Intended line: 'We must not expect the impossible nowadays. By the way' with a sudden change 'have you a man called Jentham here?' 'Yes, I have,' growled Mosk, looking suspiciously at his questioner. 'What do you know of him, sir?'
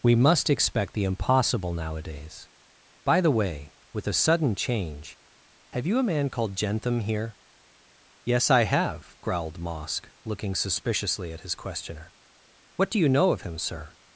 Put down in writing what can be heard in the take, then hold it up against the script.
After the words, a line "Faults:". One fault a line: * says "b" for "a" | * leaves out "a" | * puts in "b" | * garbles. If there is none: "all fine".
'We must expect the impossible nowadays. By the way' with a sudden change 'have you a man called Jentham here?' 'Yes, I have,' growled Mosk, looking suspiciously at his questioner. 'What do you know of him, sir?'
Faults:
* leaves out "not"